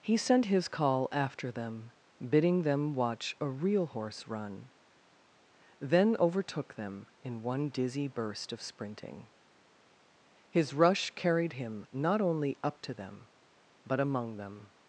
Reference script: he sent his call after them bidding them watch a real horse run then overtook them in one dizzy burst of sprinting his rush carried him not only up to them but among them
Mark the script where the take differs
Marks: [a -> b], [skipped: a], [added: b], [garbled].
he sent his call after them bidding them watch a real horse run then overtook them in one dizzy burst of sprinting his rush carried him not only up to them but among them